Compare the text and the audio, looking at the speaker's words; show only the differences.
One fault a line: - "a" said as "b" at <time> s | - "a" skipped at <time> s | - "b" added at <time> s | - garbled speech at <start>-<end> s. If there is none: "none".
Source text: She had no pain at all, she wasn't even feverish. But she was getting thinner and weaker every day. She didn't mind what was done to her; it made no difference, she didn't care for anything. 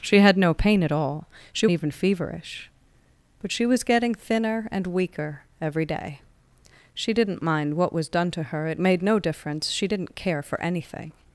- "wasn't" skipped at 1.7 s